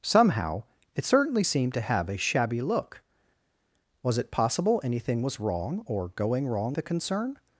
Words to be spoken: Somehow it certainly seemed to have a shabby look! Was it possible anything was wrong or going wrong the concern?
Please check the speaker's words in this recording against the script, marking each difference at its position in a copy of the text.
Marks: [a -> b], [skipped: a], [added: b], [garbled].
Somehow it certainly seemed to have a shabby look! Was it possible anything was wrong or going wrong the concern?